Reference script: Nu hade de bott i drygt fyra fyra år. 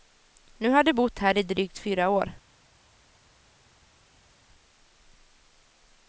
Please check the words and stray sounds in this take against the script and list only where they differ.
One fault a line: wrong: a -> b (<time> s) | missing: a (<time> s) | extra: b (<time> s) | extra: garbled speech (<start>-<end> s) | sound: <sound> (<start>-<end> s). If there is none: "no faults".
wrong: hade -> har (0.7 s)
extra: här (1.2 s)
missing: fyra (2.1 s)